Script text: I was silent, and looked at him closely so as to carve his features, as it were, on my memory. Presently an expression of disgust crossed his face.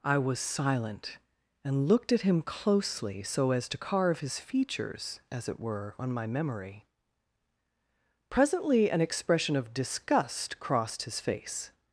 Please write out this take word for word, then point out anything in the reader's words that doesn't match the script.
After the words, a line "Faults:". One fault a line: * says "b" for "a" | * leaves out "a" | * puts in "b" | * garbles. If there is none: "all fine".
I was silent, and looked at him closely so as to carve his features, as it were, on my memory. Presently an expression of disgust crossed his face.
Faults:
all fine